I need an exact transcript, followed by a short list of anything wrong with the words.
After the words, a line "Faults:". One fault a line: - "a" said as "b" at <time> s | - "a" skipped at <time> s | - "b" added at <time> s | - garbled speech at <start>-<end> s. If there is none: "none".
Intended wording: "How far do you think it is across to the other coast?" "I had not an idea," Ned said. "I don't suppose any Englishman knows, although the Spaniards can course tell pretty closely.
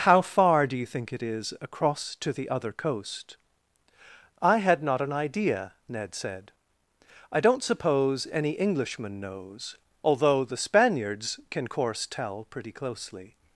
"How far do you think it is across to the other coast?" "I had not an idea," Ned said. "I don't suppose any Englishman knows, although the Spaniards can course tell pretty closely.
Faults:
none